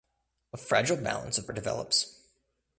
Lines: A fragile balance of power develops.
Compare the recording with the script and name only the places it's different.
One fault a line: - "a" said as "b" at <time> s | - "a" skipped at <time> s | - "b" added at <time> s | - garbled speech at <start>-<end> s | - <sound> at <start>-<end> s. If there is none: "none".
- "power" skipped at 1.5 s